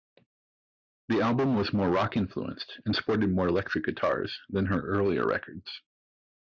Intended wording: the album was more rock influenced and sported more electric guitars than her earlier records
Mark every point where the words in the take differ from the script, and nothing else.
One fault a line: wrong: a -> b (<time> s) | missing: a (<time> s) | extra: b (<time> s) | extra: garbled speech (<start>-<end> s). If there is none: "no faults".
no faults